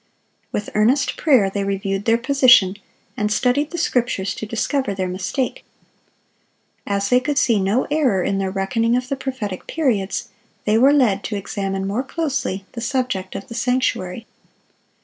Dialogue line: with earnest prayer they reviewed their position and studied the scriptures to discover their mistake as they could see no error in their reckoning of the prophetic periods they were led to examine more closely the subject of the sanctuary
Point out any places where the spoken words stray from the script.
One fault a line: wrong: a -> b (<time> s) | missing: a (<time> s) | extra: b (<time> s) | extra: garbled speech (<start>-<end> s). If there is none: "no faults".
no faults